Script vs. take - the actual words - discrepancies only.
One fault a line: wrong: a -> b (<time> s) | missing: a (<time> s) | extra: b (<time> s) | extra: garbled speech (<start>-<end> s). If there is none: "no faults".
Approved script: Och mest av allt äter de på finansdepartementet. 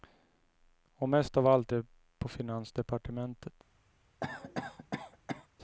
missing: äter (1.7 s)